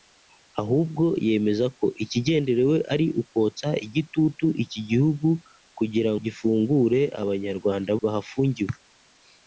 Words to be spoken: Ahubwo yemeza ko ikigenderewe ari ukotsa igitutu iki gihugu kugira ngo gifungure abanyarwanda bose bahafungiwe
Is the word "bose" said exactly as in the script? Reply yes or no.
no